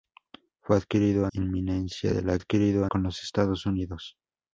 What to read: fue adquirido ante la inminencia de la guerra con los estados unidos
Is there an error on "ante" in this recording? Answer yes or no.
yes